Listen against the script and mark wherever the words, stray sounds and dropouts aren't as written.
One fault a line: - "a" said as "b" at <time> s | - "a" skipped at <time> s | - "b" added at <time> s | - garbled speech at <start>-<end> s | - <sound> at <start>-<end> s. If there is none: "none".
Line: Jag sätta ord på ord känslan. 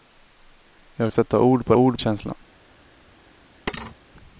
- thud at 3.7-4.0 s